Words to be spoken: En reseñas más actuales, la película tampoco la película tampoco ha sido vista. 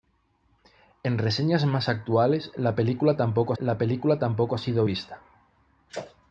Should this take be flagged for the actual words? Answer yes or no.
no